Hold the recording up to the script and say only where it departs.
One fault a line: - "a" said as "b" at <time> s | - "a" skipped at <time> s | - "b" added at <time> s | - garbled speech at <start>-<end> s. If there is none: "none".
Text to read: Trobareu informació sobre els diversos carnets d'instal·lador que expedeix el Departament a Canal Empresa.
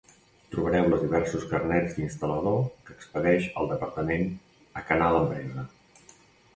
- "informació sobre" skipped at 0.9 s